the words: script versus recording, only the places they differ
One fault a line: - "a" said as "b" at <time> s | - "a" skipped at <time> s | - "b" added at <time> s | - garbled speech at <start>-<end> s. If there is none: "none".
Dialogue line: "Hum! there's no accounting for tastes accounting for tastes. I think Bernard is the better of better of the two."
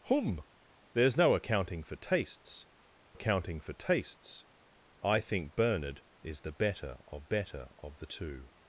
none